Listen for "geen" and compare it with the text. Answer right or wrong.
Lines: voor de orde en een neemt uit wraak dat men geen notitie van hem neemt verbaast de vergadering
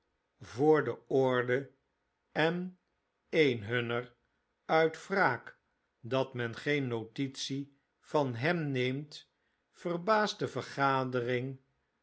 right